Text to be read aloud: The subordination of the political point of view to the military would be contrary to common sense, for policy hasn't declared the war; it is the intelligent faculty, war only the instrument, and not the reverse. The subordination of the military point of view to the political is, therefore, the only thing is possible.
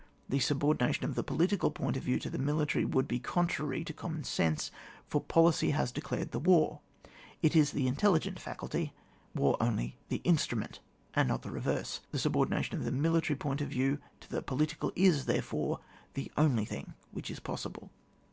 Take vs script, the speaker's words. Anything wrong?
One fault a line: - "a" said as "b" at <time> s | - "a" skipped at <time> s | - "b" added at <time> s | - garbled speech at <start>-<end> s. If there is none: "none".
- "hasn't" said as "has" at 5.8 s
- "which" added at 17.1 s